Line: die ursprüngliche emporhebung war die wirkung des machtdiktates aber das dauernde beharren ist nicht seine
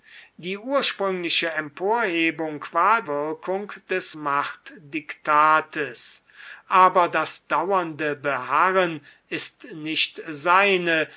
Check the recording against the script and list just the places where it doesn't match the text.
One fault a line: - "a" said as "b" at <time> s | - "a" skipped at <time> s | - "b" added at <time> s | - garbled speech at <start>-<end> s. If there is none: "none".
- "die" skipped at 3.0 s